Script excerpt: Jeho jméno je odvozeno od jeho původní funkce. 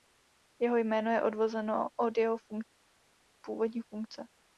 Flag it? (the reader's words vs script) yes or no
no